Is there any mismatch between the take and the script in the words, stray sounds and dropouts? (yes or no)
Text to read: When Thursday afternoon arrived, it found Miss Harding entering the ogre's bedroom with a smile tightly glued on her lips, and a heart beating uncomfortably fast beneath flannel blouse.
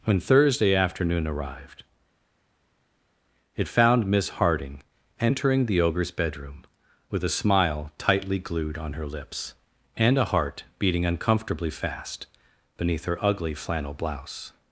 yes